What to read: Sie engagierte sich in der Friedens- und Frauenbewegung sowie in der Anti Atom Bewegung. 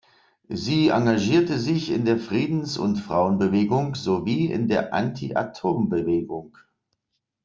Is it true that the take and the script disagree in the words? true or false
false